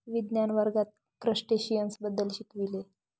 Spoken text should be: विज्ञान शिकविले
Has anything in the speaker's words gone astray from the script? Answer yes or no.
yes